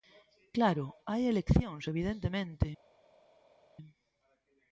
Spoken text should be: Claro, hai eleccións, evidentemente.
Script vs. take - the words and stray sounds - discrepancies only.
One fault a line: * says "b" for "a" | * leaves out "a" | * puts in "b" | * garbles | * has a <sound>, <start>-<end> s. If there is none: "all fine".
all fine